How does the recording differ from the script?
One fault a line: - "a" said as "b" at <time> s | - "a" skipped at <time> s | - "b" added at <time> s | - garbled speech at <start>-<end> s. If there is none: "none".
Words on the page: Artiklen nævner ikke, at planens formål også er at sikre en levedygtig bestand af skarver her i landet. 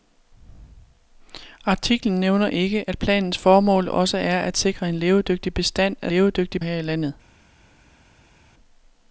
- "skarver" said as "levedygtig" at 6.1 s